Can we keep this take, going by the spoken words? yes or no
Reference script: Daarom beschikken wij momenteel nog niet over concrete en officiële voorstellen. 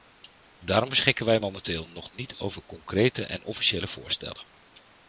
yes